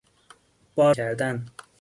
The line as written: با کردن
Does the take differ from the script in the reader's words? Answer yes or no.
no